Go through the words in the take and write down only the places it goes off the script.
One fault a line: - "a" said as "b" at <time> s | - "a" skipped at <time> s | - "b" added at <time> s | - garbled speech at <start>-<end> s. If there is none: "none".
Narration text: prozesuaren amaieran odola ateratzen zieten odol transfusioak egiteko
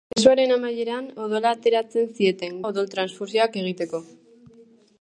none